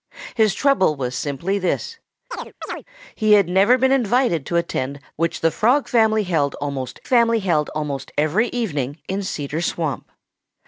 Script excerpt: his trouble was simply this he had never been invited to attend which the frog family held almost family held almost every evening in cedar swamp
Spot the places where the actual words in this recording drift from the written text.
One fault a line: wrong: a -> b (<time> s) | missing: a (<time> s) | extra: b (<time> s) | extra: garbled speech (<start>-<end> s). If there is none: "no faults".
no faults